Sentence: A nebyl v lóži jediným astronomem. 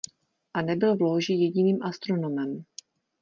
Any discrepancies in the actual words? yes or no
no